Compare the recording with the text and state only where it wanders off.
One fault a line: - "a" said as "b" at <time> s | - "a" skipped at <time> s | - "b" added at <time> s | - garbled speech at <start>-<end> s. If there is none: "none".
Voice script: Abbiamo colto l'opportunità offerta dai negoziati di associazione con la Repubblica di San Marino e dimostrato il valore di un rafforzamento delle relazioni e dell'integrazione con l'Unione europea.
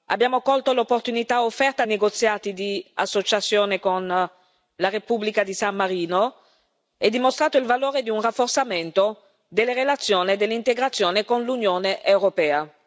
- "dai" skipped at 1.9 s